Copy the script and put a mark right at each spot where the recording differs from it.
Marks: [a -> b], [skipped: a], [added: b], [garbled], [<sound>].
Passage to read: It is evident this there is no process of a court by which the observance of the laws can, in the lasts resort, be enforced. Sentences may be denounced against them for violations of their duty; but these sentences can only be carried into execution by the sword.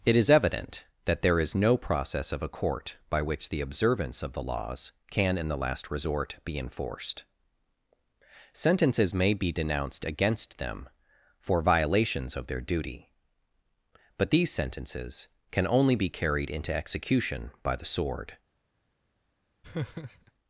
It is evident [this -> that] there is no process of a court by which the observance of the laws can, in the [lasts -> last] resort, be enforced. Sentences may be denounced against them for violations of their duty; but these sentences can only be carried into execution by the sword. [laugh]